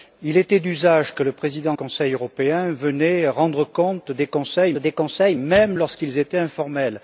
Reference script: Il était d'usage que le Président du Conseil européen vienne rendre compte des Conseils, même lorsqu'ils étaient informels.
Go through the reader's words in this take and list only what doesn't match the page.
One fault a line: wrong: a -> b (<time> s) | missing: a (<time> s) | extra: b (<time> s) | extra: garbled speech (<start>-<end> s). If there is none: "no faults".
missing: du (1.8 s)
extra: des Conseils (4.8 s)